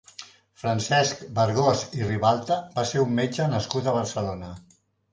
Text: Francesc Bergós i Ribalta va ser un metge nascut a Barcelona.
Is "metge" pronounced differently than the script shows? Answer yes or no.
no